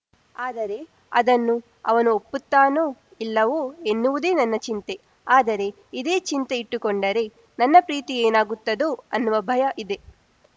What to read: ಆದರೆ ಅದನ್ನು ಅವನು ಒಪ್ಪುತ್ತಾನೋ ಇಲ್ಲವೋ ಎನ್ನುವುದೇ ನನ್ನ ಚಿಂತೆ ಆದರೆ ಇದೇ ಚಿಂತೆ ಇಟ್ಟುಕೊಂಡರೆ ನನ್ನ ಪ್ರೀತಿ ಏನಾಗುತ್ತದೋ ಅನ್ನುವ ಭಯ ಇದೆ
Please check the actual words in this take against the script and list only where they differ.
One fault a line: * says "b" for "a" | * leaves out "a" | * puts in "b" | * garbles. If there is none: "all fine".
all fine